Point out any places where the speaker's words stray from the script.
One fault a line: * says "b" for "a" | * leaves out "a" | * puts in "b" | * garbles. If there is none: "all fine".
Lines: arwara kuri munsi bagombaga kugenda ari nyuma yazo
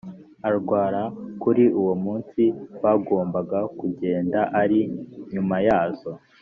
* puts in "uwo"